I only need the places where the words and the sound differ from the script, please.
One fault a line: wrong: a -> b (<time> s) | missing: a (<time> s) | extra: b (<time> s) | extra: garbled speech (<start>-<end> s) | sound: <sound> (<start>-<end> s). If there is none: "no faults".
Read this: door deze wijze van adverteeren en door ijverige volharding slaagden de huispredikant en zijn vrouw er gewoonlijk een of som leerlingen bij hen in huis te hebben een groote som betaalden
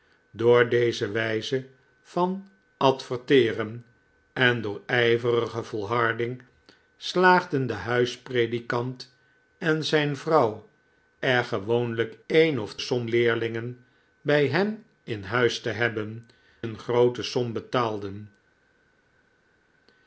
no faults